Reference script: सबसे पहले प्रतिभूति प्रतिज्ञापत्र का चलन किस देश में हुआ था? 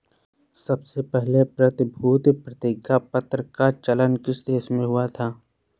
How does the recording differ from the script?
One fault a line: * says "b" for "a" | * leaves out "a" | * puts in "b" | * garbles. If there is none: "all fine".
all fine